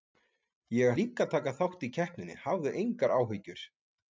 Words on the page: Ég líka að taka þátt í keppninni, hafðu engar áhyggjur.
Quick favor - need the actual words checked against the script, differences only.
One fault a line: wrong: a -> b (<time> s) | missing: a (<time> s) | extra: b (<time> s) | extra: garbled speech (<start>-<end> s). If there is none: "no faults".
no faults